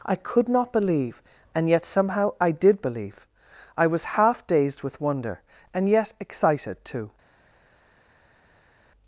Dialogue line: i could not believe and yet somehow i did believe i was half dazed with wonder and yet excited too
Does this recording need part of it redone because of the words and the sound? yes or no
no